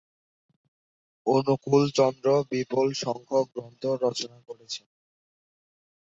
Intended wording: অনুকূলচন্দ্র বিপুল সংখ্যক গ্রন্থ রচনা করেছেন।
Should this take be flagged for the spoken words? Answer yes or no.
no